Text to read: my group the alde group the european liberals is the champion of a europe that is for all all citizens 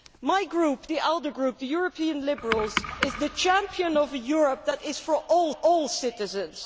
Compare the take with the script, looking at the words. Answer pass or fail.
pass